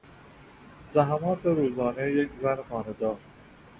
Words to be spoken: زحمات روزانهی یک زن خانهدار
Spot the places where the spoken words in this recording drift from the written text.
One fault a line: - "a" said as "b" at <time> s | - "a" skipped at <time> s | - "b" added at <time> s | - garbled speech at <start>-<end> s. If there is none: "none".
none